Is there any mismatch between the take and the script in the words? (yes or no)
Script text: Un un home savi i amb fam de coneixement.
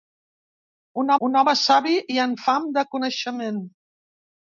no